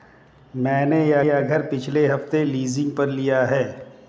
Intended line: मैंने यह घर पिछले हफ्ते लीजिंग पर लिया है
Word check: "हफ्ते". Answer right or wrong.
right